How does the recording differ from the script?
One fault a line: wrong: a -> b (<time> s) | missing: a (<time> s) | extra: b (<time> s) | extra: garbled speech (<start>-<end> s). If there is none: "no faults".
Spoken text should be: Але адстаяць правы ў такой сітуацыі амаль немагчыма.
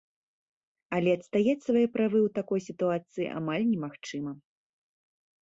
extra: свае (1.7 s)